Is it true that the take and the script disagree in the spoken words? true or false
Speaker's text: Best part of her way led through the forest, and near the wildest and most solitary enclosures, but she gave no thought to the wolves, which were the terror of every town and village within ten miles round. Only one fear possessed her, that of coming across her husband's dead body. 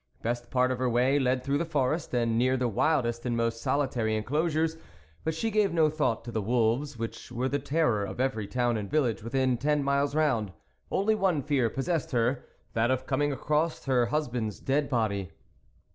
false